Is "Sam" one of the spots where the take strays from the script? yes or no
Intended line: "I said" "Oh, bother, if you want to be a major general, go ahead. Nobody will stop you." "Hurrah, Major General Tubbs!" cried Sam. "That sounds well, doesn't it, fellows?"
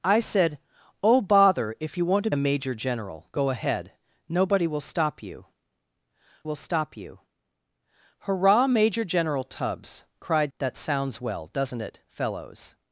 yes